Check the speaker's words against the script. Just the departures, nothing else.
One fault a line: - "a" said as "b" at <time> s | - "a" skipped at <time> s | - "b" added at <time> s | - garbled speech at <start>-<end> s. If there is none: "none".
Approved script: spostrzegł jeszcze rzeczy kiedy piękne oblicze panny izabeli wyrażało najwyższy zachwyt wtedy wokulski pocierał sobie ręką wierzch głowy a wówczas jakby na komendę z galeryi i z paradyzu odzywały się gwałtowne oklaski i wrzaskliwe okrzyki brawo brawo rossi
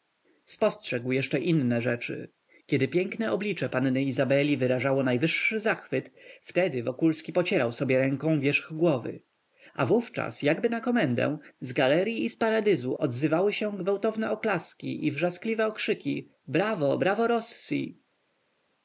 - "inne" added at 1.4 s